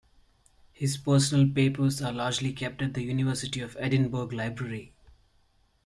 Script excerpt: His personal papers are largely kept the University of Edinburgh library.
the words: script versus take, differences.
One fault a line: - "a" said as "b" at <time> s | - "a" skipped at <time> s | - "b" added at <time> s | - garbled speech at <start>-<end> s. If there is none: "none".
- "at" added at 2.8 s